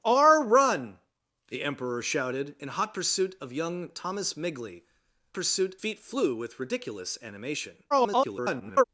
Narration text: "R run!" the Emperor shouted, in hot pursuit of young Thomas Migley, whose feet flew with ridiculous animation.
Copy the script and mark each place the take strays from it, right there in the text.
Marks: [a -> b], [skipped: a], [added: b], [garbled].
"R run!" the Emperor shouted, in hot pursuit of young Thomas Migley, [whose -> pursuit] feet flew with ridiculous animation. [garbled]